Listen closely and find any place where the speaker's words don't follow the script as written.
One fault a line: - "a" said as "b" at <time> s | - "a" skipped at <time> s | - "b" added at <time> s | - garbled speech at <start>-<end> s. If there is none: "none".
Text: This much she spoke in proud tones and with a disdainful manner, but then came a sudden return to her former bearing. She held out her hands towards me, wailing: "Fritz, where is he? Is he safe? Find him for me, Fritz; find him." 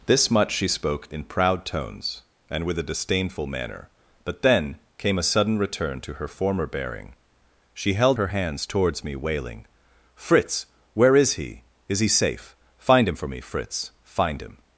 - "out" skipped at 8.2 s